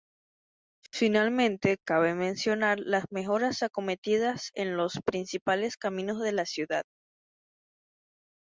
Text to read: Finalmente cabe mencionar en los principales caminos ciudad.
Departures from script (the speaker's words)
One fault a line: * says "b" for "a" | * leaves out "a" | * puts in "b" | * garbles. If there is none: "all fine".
* puts in "las mejoras acometidas"
* puts in "de la"